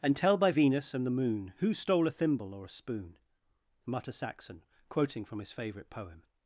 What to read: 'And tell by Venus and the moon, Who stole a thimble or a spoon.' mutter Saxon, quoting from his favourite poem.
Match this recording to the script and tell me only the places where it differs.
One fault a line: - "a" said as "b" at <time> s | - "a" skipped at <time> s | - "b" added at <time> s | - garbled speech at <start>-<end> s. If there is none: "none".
none